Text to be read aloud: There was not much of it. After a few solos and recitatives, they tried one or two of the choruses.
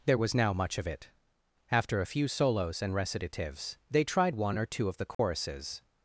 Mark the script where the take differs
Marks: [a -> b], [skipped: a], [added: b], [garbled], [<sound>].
There was [not -> now] much of it. After a few solos and recitatives, they tried one or two of the choruses. [dropout]